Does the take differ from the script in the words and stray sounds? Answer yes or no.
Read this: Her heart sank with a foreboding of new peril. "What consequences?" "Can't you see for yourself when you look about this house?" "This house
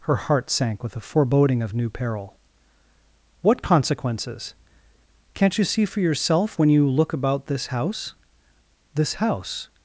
no